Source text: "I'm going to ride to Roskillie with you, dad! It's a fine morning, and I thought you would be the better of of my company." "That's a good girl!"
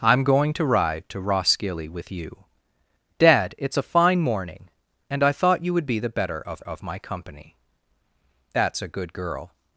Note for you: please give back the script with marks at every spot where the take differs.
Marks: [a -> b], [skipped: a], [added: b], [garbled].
"I'm going to ride to Roskillie with you, dad! It's a fine morning, and I thought you would be the better of of my company." "That's a good girl!"